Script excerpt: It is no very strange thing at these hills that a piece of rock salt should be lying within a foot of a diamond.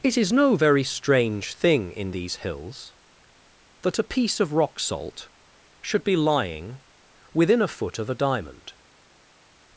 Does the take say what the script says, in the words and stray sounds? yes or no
no